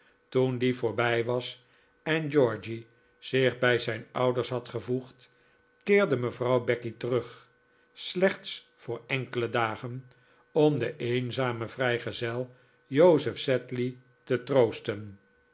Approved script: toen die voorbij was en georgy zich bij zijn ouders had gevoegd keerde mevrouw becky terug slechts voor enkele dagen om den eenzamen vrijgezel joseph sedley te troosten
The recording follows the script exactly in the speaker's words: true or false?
true